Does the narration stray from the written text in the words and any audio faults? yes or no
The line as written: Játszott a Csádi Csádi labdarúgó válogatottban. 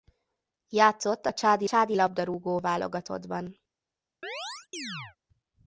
yes